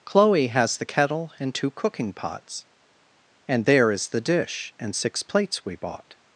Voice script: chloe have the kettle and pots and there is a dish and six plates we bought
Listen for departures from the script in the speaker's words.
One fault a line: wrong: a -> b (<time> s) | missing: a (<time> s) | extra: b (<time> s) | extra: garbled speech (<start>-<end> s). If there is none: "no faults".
wrong: have -> has (0.5 s)
extra: two cooking (1.5 s)
wrong: a -> the (4.1 s)